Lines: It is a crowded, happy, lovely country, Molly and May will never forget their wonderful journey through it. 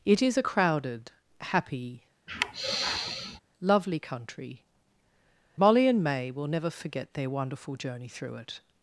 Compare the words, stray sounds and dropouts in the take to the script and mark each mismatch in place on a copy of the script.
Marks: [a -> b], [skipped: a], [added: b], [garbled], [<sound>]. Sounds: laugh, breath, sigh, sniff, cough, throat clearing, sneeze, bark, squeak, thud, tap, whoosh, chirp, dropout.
It is a crowded, happy, [sigh] lovely country, Molly and May will never forget their wonderful journey through it.